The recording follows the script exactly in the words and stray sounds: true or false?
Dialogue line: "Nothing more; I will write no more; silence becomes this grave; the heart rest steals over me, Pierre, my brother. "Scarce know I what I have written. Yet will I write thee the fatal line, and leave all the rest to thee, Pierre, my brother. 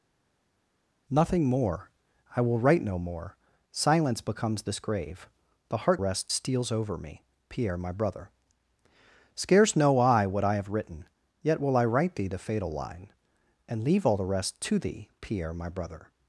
true